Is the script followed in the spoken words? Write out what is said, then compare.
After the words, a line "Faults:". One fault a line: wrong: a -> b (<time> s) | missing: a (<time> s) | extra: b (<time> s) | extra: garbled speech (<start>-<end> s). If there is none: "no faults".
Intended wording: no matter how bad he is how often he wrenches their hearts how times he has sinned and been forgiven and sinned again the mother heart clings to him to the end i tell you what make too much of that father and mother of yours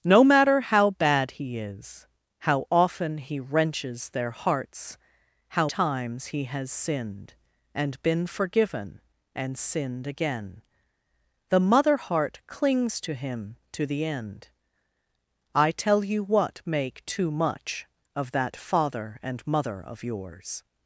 no matter how bad he is how often he wrenches their hearts how times he has sinned and been forgiven and sinned again the mother heart clings to him to the end i tell you what make too much of that father and mother of yours
Faults:
no faults